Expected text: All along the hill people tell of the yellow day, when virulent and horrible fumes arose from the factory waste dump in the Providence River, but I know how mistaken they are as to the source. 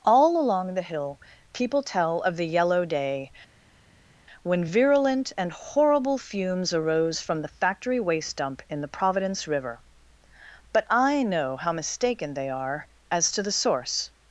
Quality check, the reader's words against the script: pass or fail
pass